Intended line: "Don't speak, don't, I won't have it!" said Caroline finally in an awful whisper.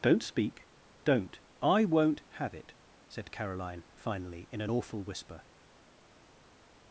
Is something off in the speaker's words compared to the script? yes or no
no